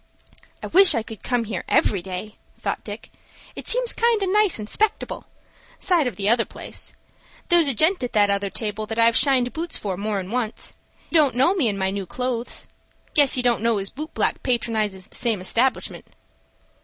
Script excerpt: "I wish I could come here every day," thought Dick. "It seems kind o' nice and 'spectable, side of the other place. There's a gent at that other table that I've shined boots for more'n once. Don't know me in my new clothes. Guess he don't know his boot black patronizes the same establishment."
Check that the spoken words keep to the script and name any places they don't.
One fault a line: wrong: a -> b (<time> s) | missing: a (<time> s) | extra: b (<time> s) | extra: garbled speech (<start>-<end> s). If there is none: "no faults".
no faults